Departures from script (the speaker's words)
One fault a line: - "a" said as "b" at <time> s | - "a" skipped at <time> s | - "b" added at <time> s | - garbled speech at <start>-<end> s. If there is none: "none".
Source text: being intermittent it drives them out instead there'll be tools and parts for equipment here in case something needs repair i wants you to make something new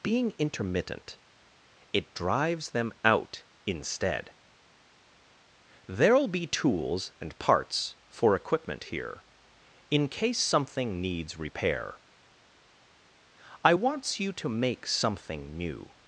none